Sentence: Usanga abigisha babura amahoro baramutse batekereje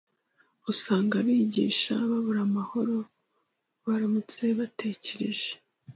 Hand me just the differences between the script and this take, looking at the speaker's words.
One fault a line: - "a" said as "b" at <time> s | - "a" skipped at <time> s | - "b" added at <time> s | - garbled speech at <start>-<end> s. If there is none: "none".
none